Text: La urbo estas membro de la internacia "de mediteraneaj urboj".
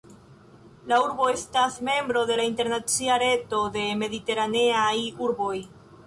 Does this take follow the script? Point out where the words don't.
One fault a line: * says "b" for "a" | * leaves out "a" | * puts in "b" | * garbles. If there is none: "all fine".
* puts in "reto"